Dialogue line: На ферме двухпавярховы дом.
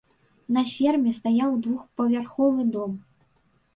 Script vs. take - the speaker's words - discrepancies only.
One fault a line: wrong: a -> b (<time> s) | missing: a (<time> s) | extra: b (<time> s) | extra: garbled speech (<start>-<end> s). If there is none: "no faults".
extra: стаяў (1.2 s)